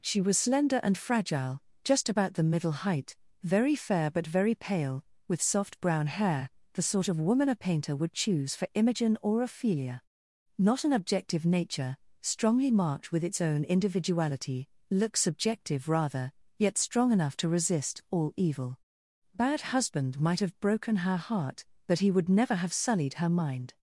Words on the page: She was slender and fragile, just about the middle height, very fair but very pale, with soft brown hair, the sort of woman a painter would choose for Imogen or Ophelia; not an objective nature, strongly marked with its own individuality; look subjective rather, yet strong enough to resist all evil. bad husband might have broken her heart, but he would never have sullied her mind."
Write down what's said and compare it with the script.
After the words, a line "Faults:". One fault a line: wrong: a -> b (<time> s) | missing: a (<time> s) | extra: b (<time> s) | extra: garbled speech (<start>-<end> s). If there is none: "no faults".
She was slender and fragile, just about the middle height, very fair but very pale, with soft brown hair, the sort of woman a painter would choose for Imogen or Ophelia; not an objective nature, strongly marked with its own individuality; look subjective rather, yet strong enough to resist all evil. bad husband might have broken her heart, but he would never have sullied her mind."
Faults:
no faults